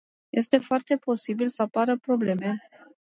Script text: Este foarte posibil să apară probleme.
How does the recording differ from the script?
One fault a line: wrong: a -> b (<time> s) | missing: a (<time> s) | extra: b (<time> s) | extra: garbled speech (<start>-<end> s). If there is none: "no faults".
no faults